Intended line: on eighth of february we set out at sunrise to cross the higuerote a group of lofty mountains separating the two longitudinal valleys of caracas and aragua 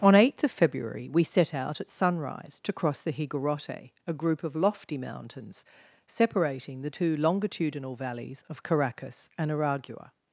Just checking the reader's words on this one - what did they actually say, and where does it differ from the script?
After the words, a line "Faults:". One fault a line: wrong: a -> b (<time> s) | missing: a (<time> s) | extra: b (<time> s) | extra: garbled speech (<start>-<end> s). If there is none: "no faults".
on eighth of february we set out at sunrise to cross the higuerote a group of lofty mountains separating the two longitudinal valleys of caracas and aragua
Faults:
no faults